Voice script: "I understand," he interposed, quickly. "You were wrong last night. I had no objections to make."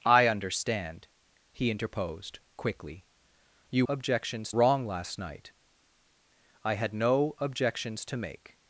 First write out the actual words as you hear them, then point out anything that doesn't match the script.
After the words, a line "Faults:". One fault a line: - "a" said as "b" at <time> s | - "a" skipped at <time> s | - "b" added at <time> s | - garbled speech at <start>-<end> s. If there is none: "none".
"I understand," he interposed, quickly. "You objections wrong last night. I had no objections to make."
Faults:
- "were" said as "objections" at 3.9 s